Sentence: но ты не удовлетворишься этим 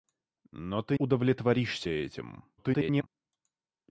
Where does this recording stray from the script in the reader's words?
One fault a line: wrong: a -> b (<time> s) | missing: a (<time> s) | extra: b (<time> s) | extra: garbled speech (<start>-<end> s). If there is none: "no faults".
missing: не (1.0 s)
extra: garbled speech (2.6-3.1 s)